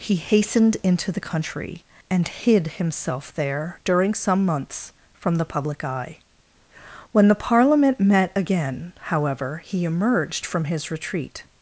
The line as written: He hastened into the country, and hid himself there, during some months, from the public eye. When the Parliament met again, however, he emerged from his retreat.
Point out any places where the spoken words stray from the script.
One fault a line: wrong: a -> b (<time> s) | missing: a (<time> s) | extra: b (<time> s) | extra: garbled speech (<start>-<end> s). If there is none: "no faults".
no faults